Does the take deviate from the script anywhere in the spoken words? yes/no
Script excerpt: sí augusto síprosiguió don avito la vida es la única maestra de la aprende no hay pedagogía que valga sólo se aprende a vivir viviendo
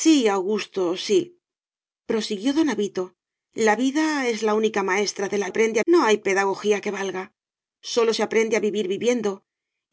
no